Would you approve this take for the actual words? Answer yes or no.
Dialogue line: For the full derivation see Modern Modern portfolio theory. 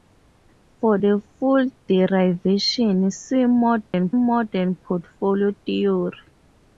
yes